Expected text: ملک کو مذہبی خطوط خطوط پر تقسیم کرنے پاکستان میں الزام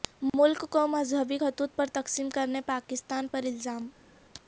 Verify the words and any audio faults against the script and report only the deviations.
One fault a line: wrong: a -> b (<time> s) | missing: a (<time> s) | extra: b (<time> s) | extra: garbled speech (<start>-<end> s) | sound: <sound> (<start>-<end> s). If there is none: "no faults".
missing: خطوط (1.8 s)
wrong: میں -> پر (3.3 s)